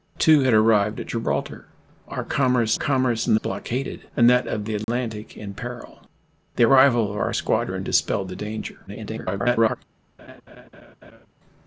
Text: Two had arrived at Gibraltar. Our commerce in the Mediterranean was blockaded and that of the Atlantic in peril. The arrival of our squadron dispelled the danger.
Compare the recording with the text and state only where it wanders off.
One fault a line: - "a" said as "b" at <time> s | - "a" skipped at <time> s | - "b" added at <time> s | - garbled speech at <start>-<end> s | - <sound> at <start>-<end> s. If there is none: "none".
- "commerce" added at 2.7 s
- "Mediterranean was" skipped at 3.4 s
- dropout at 4.8-4.9 s
- garbled speech at 8.9-9.8 s
- laugh at 10.2-11.3 s